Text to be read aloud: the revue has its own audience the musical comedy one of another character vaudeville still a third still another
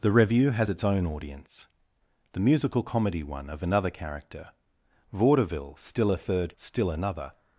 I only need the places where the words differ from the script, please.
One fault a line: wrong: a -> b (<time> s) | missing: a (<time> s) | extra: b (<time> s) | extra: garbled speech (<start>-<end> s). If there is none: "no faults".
no faults